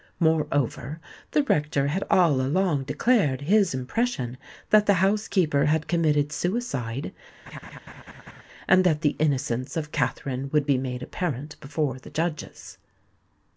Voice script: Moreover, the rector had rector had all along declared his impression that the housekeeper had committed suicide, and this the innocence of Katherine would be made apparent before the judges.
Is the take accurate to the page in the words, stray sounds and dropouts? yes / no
no